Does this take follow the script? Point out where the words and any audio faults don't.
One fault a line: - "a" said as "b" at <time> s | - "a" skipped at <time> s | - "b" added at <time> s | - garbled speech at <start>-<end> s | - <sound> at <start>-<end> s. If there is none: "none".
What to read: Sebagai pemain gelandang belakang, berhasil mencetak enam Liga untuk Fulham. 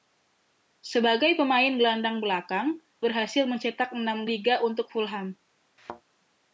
- thud at 5.8-6.0 s